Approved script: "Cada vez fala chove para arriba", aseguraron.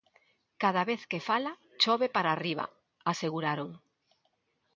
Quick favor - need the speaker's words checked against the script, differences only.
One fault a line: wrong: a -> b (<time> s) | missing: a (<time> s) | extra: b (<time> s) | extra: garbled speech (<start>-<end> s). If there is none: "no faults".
extra: que (1.1 s)